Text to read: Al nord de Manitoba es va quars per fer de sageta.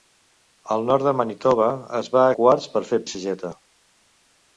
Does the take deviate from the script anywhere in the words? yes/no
no